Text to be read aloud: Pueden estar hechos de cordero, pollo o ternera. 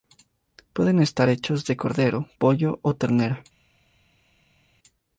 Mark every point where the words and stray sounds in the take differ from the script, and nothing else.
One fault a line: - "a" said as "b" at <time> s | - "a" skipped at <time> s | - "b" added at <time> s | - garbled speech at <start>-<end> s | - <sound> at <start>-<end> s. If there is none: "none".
none